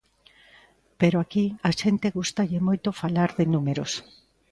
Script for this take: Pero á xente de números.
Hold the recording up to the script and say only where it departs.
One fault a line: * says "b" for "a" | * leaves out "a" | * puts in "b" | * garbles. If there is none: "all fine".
* puts in "aquí"
* puts in "gústalle moito falar"